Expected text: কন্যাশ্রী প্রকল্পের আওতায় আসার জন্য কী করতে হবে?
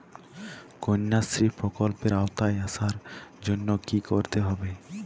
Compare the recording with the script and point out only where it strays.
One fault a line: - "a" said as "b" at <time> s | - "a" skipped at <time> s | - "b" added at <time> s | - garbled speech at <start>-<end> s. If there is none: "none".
none